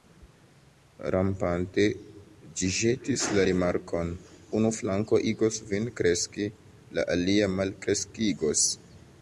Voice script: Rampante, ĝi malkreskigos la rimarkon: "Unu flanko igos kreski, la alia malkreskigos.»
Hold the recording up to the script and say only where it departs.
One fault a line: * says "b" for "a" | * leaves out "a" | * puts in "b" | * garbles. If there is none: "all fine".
* says "ĵetis" for "malkreskigos"
* puts in "vin"